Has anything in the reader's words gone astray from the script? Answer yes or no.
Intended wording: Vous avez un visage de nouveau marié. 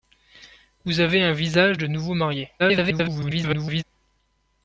yes